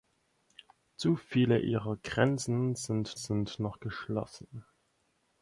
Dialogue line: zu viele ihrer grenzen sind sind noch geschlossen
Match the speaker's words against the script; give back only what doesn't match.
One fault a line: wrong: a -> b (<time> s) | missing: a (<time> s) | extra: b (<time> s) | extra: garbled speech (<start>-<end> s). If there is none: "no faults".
no faults